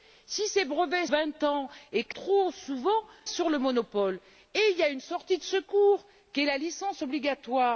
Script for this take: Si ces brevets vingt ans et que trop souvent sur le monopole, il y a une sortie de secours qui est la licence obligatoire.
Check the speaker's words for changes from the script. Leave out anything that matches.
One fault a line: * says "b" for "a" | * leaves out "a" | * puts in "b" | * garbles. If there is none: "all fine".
all fine